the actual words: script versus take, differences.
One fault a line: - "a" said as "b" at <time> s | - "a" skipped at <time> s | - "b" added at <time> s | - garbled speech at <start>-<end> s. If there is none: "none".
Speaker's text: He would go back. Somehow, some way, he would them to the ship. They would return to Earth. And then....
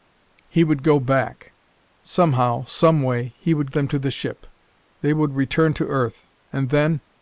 none